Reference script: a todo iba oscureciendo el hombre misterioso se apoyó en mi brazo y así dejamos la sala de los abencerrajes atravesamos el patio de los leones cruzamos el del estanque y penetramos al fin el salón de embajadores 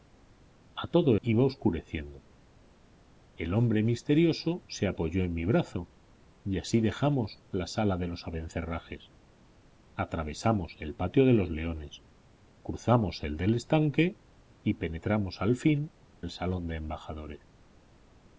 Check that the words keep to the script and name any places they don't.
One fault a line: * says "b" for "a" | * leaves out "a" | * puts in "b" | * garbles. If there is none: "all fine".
all fine